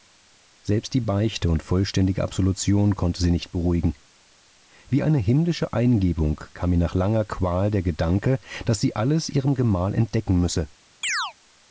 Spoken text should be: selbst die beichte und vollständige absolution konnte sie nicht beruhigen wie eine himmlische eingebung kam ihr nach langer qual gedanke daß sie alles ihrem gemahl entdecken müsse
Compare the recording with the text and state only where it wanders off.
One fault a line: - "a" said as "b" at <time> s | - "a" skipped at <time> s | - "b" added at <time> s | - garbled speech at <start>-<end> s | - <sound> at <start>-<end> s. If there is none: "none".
- "der" added at 7.7 s
- chirp at 11.0-11.3 s